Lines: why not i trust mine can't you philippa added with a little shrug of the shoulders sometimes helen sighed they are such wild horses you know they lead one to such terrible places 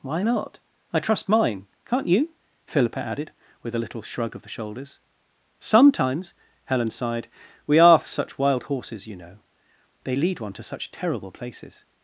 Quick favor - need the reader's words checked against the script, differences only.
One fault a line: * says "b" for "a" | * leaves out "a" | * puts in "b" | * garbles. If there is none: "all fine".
* says "we" for "they"